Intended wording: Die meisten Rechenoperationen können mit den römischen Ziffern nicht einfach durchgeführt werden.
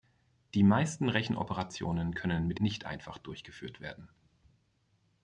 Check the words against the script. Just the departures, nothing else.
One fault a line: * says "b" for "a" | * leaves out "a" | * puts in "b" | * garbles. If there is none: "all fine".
* leaves out "den römischen Ziffern"